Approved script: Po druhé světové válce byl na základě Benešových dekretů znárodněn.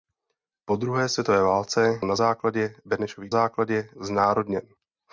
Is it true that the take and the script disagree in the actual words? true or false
true